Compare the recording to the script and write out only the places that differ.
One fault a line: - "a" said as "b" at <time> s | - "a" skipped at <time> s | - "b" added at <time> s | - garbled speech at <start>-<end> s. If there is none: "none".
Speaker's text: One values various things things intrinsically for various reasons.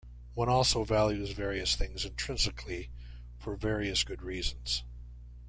- "also" added at 0.5 s
- "things" skipped at 2.1 s
- "good" added at 4.0 s